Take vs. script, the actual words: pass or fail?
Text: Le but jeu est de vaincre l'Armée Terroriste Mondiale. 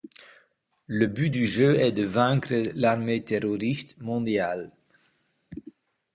fail